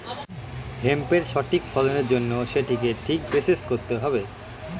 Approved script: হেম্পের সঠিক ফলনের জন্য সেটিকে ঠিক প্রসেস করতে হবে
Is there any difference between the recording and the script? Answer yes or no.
no